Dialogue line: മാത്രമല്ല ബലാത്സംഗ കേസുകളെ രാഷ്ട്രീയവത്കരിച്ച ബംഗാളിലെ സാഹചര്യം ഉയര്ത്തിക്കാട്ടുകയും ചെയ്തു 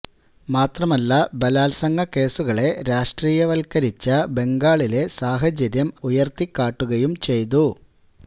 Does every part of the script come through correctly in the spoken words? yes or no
yes